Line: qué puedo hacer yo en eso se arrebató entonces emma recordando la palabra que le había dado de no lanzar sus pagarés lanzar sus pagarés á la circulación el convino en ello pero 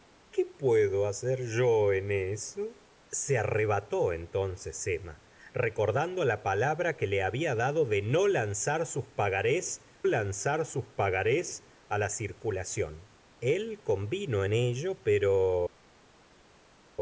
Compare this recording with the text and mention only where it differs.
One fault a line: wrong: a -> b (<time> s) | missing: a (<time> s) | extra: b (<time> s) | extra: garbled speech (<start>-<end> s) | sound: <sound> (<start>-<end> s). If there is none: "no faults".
no faults